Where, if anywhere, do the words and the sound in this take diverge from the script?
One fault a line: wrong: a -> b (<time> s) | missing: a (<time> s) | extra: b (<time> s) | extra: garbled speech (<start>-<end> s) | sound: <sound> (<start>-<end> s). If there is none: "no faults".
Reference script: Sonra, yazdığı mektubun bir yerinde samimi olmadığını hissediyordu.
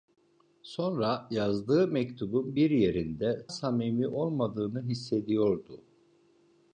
no faults